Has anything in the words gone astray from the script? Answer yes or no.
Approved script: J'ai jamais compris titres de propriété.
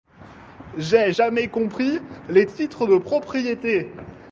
yes